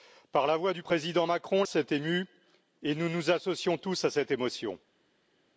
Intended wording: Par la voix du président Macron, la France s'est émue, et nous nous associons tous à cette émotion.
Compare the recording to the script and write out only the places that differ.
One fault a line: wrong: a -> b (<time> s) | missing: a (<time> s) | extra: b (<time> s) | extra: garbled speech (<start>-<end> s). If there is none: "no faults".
missing: la France (1.6 s)